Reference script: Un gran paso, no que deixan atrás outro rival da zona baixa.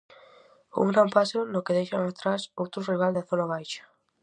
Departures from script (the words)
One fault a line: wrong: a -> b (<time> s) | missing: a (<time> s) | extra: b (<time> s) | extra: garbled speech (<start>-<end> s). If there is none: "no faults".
no faults